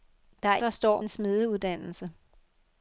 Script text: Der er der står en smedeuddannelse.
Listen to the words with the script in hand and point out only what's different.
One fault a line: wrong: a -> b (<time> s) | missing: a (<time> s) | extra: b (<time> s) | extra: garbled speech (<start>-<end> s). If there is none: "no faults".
no faults